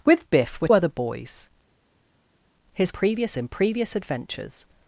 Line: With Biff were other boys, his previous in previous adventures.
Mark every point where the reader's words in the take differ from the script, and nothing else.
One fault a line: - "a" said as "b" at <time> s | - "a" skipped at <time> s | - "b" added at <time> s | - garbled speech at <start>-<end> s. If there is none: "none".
none